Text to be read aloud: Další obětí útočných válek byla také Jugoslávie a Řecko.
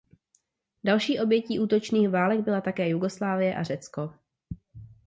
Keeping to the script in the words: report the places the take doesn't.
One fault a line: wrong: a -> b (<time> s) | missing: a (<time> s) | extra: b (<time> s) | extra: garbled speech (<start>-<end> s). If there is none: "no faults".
no faults